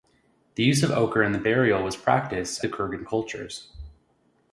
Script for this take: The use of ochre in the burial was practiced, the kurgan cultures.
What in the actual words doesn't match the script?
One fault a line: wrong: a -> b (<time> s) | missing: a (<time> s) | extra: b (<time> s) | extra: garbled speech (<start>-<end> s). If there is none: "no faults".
no faults